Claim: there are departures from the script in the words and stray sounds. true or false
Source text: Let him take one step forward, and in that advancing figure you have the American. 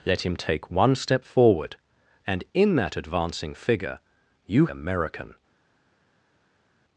true